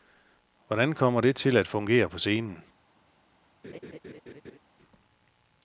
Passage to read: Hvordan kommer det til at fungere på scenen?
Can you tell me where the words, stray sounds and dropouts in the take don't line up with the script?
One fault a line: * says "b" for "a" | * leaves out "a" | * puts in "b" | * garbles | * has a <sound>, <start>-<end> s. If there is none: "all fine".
* has a laugh, 3.6-4.6 s